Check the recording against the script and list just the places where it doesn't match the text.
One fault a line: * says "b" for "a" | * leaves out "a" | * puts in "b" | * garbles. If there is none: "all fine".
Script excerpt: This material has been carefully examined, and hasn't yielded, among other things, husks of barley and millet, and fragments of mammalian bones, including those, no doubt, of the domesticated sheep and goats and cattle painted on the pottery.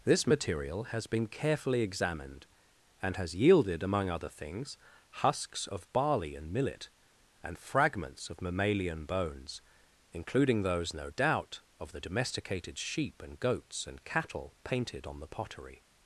* says "has" for "hasn't"